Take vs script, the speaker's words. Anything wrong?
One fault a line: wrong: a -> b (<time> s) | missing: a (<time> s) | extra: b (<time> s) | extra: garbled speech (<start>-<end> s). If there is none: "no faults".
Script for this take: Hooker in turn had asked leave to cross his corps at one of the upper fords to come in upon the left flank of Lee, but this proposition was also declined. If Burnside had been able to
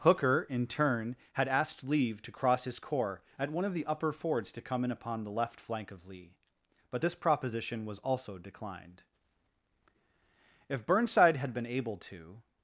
no faults